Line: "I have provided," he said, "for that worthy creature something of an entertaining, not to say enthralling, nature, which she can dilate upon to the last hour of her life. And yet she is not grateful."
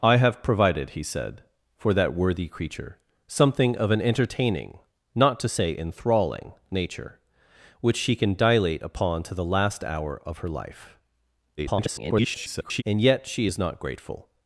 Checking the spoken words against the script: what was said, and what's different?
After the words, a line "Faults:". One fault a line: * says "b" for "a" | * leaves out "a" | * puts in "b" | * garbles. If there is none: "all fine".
"I have provided," he said, "for that worthy creature something of an entertaining, not to say enthralling, nature, which she can dilate upon to the last hour of her life. [garbled] And yet she is not grateful."
Faults:
* garbles